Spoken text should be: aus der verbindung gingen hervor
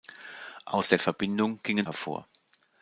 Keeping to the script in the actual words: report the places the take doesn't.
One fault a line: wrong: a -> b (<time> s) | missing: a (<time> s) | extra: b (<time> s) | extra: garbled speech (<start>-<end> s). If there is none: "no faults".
no faults